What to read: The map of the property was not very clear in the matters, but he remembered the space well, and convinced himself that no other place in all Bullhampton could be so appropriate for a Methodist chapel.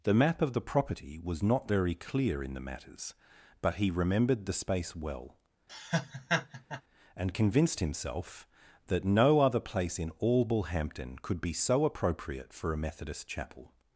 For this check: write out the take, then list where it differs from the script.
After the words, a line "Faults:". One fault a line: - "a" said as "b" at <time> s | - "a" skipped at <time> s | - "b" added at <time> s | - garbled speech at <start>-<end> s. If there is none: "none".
The map of the property was not very clear in the matters, but he remembered the space well, and convinced himself that no other place in all Bullhampton could be so appropriate for a Methodist chapel.
Faults:
none